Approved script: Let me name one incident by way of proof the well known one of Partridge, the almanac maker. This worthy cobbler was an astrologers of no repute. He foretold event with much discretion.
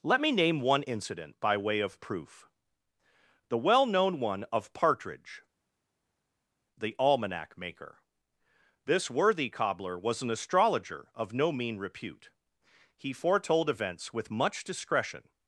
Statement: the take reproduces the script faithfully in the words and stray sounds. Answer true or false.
false